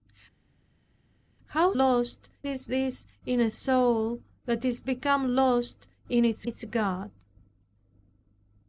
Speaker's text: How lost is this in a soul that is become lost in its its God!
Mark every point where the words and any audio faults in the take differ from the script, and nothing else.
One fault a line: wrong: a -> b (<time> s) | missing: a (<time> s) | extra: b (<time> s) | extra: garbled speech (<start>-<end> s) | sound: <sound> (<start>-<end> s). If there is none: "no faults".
no faults